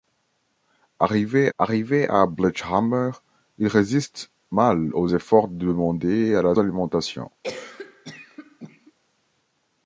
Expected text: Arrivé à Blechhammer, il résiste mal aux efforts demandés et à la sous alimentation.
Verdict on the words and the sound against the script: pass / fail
fail